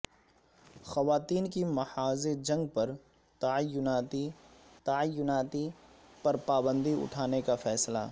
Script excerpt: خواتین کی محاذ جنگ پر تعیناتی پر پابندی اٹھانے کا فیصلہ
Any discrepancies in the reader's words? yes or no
yes